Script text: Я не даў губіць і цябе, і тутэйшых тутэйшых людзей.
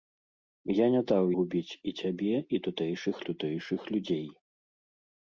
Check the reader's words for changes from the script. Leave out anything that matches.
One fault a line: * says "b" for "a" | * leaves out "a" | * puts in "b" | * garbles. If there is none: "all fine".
all fine